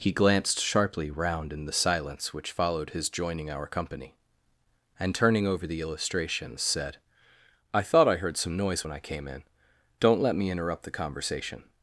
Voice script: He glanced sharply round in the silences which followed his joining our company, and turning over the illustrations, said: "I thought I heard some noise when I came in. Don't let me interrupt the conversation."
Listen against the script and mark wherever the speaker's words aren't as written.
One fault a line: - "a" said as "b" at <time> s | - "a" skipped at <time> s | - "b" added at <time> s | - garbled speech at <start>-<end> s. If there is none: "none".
- "silences" said as "silence" at 1.7 s